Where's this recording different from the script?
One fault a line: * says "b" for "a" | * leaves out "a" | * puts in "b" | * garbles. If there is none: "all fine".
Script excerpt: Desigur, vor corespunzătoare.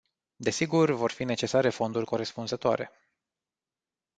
* puts in "fi necesare fonduri"